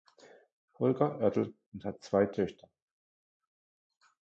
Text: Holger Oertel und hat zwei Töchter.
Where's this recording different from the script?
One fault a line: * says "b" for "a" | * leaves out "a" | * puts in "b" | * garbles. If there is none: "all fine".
all fine